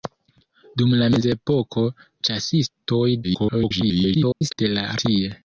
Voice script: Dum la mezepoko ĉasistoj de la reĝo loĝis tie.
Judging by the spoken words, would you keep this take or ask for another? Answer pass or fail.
fail